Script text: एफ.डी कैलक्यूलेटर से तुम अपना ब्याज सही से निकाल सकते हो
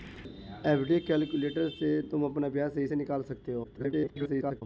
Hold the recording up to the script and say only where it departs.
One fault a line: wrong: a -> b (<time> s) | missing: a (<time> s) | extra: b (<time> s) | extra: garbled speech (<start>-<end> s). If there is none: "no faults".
extra: garbled speech (3.6-4.6 s)